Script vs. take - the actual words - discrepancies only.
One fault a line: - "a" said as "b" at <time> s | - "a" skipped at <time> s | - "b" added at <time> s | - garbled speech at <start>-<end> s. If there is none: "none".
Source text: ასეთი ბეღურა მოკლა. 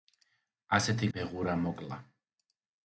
none